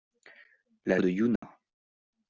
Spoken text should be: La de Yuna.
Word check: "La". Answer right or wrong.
right